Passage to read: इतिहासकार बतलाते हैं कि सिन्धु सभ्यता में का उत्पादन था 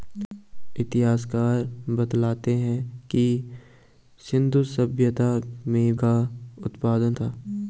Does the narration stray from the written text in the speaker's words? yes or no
no